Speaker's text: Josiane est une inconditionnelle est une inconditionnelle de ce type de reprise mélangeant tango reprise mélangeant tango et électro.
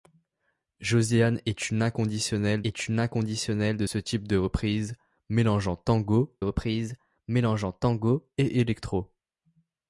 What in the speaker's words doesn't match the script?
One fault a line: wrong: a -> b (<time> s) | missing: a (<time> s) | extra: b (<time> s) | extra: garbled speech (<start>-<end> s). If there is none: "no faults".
no faults